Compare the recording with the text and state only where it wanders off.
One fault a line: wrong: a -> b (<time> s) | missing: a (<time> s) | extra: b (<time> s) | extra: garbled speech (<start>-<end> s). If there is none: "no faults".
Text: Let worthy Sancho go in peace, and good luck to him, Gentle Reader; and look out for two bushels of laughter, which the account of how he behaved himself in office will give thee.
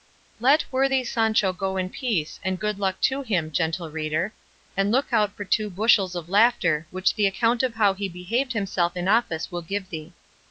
no faults